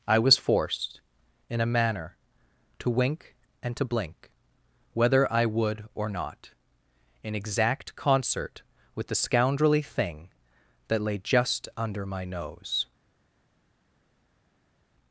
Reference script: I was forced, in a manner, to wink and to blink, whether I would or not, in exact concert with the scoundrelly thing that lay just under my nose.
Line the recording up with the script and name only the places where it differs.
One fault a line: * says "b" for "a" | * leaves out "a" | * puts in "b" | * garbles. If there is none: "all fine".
all fine